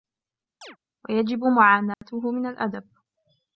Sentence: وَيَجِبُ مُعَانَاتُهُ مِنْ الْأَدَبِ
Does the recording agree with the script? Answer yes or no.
yes